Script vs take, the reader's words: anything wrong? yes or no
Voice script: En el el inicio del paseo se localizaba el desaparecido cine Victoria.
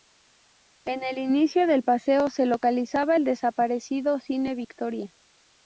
yes